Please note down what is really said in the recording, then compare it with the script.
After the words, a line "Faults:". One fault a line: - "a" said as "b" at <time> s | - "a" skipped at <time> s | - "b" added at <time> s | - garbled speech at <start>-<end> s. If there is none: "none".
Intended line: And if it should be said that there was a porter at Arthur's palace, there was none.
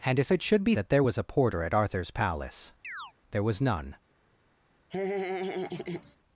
And if it should be that there was a porter at Arthur's palace, there was none.
Faults:
- "said" skipped at 0.8 s